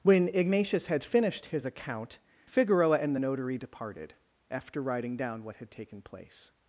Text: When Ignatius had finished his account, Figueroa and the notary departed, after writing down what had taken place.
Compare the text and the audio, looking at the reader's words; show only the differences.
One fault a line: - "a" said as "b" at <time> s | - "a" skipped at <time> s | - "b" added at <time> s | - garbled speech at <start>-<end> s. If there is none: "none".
none